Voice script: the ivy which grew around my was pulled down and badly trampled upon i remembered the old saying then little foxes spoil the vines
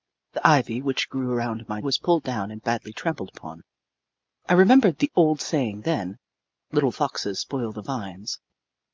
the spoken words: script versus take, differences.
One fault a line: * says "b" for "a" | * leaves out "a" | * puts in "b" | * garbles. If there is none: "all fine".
all fine